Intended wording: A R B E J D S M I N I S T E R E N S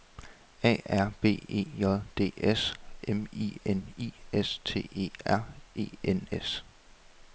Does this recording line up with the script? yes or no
yes